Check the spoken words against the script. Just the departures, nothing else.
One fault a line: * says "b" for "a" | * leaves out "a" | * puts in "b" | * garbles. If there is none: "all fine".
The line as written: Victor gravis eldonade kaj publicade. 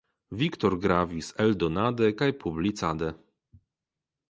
all fine